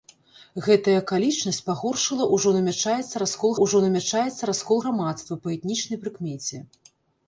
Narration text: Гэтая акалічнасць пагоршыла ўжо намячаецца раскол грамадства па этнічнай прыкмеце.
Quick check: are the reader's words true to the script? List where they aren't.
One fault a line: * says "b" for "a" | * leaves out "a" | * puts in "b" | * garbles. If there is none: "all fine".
* puts in "ўжо намячаецца раскол"